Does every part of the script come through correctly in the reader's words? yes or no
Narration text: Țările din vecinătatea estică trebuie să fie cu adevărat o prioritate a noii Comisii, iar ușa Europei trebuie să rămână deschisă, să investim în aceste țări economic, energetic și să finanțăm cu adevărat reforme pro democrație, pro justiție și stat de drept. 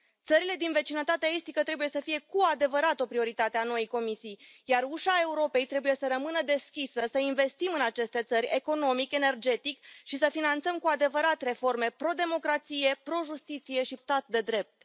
yes